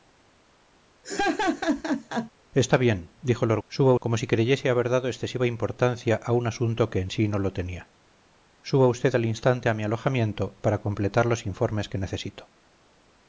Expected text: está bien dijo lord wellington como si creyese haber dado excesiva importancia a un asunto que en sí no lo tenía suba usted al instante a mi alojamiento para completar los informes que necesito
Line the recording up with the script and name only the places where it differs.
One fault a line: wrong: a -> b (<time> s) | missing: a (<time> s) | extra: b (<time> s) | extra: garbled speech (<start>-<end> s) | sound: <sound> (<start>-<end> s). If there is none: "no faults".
sound: laugh (1.0-2.3 s)
wrong: wellington -> suba (3.7 s)